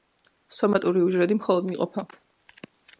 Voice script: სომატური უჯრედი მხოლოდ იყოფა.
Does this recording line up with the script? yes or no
yes